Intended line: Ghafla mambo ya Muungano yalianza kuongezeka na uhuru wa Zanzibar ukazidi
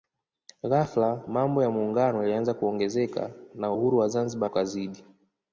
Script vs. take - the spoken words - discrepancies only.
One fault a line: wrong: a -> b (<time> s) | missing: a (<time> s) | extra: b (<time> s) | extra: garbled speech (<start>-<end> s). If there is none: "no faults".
no faults